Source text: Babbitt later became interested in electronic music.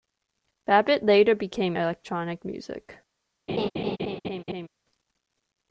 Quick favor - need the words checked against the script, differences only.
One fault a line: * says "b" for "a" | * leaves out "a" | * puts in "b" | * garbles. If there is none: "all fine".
* leaves out "interested in"